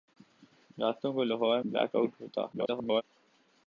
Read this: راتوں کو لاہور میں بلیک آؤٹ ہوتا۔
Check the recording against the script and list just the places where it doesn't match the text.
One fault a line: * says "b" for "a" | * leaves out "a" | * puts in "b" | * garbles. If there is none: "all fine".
* leaves out "میں"
* garbles